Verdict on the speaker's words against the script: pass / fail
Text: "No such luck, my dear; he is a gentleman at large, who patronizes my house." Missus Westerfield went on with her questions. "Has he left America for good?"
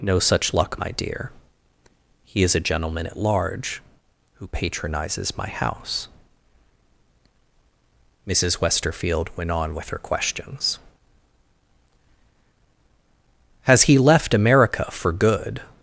pass